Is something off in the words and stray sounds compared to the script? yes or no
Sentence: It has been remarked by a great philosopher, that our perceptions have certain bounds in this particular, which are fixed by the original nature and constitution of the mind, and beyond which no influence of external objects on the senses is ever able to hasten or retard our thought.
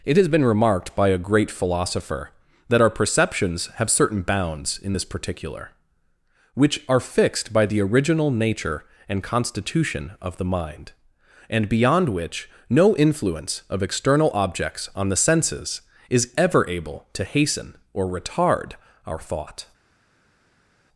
no